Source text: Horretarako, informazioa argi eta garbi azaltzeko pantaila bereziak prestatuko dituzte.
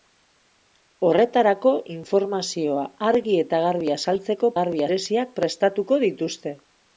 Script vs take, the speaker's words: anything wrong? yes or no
yes